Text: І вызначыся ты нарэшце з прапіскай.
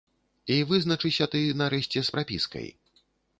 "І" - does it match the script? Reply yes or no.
yes